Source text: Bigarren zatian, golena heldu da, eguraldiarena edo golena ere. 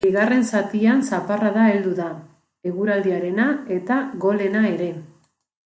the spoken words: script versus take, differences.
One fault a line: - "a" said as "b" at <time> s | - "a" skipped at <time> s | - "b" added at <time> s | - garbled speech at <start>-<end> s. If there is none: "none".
- "golena" said as "zaparrada" at 1.0 s
- "edo" said as "eta" at 3.8 s